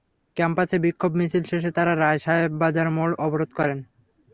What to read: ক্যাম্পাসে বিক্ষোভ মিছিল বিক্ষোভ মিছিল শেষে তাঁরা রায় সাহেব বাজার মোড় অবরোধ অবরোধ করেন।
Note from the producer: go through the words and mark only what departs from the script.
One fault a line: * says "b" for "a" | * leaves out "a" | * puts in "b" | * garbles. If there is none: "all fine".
* leaves out "বিক্ষোভ মিছিল"
* leaves out "অবরোধ"